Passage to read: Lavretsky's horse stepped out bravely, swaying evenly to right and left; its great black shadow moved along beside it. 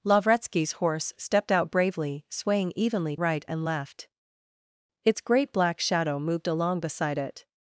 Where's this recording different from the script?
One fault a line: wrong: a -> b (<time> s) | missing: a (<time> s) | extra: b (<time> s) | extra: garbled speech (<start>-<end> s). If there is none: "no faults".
missing: to (3.1 s)